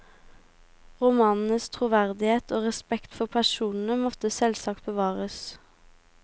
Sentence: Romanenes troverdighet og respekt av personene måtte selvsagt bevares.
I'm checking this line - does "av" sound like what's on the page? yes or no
no